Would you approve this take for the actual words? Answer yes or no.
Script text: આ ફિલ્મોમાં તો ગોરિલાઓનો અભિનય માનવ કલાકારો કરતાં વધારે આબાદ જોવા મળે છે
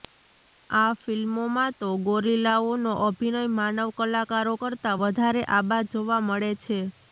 yes